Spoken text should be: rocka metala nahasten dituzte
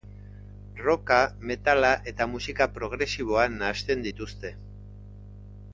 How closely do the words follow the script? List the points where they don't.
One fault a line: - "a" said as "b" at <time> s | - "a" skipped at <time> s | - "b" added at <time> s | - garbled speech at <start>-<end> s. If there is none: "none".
- "eta musika progresiboa" added at 2.1 s